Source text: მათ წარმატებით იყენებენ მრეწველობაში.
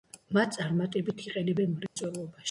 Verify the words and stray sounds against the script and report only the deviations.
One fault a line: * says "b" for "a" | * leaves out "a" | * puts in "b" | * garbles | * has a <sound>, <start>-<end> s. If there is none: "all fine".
* has a dropout, 1.9-2.0 s